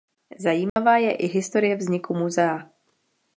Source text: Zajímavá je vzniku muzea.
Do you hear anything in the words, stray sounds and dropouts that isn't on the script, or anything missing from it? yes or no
yes